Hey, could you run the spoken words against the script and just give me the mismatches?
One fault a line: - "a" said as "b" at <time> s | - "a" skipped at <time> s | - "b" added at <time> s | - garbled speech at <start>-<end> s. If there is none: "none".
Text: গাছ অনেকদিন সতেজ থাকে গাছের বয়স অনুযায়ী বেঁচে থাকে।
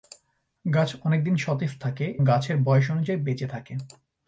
none